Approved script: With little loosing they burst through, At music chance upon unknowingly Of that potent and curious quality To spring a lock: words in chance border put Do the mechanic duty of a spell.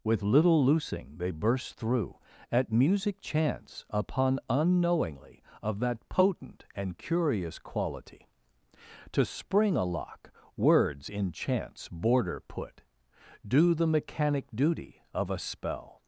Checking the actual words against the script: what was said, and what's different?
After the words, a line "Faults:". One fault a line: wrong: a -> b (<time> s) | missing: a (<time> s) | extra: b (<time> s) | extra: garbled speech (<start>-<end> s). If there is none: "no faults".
With little loosing they burst through, At music chance upon unknowingly Of that potent and curious quality To spring a lock: words in chance border put Do the mechanic duty of a spell.
Faults:
no faults